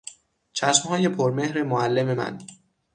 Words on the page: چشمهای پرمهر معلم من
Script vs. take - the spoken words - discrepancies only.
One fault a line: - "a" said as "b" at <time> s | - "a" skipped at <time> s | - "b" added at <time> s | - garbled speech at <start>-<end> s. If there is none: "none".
none